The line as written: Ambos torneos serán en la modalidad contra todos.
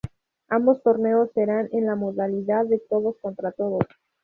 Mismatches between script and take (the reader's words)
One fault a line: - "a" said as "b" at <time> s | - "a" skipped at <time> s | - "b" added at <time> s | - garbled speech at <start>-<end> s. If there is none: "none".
- "de todos" added at 2.6 s